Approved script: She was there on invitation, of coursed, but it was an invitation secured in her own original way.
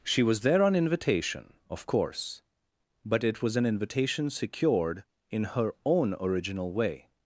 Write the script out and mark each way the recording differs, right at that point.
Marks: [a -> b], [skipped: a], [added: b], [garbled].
She was there on invitation, of [coursed, -> course] but it was an invitation secured in her own original way.